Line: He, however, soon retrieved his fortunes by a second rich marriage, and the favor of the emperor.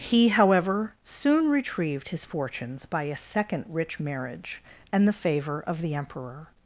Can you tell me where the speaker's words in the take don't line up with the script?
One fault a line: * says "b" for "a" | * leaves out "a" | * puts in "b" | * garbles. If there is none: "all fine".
all fine